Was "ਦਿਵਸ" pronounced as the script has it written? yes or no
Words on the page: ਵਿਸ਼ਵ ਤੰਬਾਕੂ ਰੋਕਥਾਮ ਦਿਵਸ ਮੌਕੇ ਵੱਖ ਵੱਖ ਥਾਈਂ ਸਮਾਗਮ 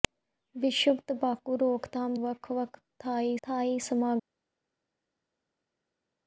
no